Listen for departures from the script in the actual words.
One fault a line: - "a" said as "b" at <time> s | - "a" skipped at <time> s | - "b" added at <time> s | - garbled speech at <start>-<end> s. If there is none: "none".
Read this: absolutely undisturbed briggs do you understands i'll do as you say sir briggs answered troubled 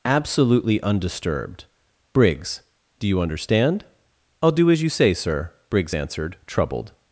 - "understands" said as "understand" at 3.2 s